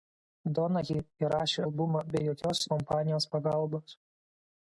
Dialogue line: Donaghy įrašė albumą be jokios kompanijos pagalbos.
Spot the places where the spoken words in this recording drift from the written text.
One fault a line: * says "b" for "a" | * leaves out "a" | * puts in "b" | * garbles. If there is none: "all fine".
all fine